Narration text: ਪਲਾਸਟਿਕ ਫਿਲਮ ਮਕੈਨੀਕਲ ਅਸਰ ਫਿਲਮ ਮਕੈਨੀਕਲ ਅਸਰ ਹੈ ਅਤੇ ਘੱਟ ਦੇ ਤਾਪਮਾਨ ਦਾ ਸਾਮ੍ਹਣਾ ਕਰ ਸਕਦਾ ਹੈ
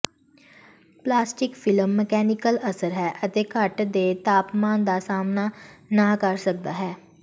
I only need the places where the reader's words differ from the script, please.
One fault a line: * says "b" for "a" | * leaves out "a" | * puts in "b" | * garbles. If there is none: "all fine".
* leaves out "ਫਿਲਮ ਮਕੈਨੀਕਲ ਅਸਰ"
* puts in "ਨਾ"